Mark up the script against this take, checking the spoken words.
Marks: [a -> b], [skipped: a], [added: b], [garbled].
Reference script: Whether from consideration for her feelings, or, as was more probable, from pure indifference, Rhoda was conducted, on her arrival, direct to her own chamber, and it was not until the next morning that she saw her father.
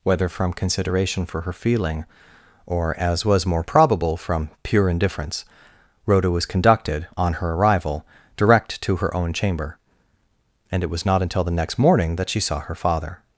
Whether from consideration for her [feelings, -> feeling] or, as was more probable, from pure indifference, Rhoda was conducted, on her arrival, direct to her own chamber, and it was not until the next morning that she saw her father.